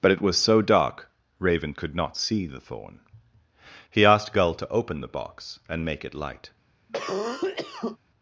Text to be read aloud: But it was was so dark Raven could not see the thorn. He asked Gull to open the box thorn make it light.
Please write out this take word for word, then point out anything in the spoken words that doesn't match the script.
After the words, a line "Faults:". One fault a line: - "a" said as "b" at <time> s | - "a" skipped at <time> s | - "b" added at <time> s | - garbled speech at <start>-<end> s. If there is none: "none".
But it was so dark Raven could not see the thorn. He asked Gull to open the box and make it light.
Faults:
- "was" skipped at 0.4 s
- "thorn" said as "and" at 5.7 s